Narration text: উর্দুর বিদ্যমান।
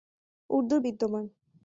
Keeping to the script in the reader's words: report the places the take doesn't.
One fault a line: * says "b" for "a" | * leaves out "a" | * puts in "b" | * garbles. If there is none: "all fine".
all fine